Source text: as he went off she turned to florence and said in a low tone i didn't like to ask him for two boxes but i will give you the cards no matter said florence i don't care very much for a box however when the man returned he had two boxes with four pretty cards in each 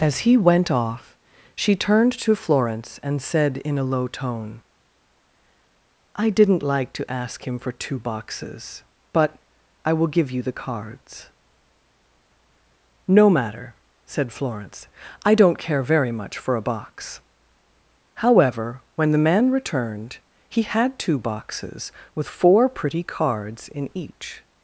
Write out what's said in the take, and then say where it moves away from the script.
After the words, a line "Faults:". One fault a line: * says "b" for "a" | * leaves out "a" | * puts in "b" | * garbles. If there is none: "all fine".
as he went off she turned to florence and said in a low tone i didn't like to ask him for two boxes but i will give you the cards no matter said florence i don't care very much for a box however when the man returned he had two boxes with four pretty cards in each
Faults:
all fine